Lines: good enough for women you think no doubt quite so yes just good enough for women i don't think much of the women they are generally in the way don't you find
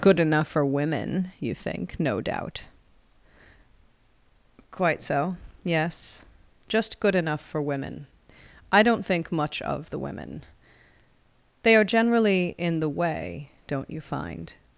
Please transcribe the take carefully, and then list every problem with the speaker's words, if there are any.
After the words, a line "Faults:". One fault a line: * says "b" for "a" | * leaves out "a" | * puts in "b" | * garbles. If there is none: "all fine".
good enough for women you think no doubt quite so yes just good enough for women i don't think much of the women they are generally in the way don't you find
Faults:
all fine